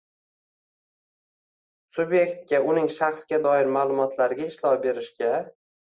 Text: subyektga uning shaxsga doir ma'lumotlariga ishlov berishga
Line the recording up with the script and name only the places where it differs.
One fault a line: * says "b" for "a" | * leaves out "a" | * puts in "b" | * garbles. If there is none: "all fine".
all fine